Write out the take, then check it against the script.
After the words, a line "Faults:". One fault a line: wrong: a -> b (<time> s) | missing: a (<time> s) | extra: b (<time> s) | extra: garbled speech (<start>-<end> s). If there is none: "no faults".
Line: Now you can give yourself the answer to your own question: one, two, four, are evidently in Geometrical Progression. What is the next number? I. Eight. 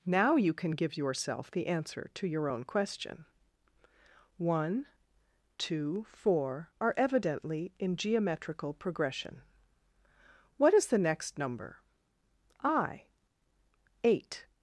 Now you can give yourself the answer to your own question: one, two, four, are evidently in Geometrical Progression. What is the next number? I. Eight.
Faults:
no faults